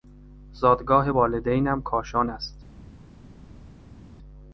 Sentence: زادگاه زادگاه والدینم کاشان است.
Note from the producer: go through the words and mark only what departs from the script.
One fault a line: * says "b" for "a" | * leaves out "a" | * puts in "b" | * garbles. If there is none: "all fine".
* leaves out "زادگاه"